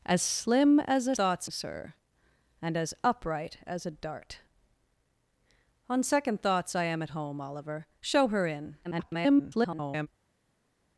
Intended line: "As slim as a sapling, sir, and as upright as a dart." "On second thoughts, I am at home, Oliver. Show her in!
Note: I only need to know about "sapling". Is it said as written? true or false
false